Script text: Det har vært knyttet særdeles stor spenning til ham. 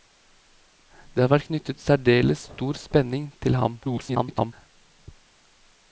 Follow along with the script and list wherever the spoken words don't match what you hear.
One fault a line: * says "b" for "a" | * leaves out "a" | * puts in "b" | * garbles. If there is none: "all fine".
* garbles